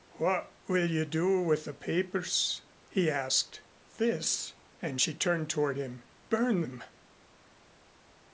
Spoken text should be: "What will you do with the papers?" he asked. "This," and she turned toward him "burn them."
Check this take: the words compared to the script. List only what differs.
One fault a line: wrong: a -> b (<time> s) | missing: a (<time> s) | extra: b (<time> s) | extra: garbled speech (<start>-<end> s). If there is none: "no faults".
no faults